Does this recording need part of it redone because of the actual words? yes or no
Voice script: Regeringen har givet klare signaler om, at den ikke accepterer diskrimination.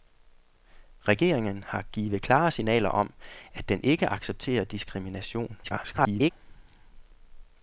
yes